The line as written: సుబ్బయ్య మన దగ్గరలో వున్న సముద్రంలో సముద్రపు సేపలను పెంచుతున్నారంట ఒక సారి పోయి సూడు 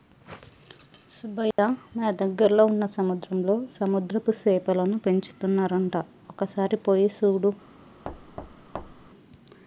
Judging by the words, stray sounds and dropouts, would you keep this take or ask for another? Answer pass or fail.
fail